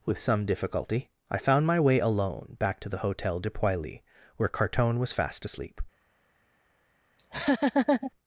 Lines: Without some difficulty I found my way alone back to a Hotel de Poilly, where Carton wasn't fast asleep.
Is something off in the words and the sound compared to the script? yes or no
yes